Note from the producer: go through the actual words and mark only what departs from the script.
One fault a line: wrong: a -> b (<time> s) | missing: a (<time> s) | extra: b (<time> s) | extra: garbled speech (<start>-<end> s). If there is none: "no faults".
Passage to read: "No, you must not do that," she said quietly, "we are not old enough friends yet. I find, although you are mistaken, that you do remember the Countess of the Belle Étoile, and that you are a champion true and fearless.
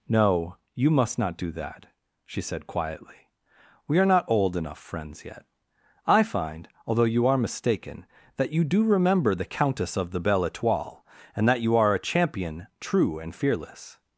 no faults